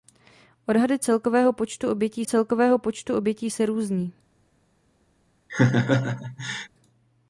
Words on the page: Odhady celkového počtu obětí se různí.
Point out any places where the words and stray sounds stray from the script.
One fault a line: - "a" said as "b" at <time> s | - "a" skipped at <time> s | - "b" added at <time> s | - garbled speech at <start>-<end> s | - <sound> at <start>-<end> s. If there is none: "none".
- "celkového počtu obětí" added at 2.2 s
- laugh at 5.5-6.7 s